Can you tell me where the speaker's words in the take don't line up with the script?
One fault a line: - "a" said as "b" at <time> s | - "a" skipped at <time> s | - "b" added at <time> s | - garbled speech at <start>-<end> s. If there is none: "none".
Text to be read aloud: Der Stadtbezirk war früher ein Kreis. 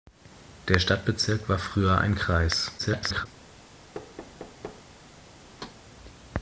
- garbled speech at 2.8-3.3 s